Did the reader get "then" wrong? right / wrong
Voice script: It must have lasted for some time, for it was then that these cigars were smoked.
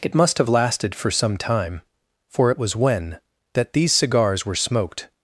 wrong